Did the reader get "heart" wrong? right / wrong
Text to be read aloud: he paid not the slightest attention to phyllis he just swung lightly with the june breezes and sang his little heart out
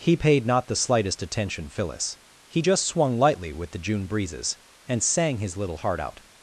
right